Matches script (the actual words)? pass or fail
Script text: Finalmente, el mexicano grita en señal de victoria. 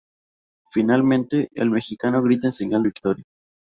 fail